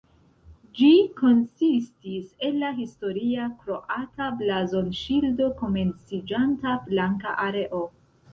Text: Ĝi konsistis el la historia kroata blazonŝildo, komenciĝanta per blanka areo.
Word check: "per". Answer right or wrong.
wrong